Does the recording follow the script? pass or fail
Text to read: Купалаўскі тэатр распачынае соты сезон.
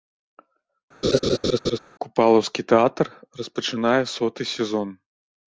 pass